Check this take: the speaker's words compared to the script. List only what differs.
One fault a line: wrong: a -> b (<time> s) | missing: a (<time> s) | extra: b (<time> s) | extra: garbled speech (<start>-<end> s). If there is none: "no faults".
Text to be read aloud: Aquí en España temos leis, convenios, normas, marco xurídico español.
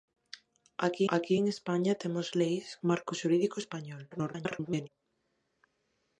extra: aquí (1.1 s)
missing: convenios normas (2.7 s)
extra: garbled speech (4.1-4.9 s)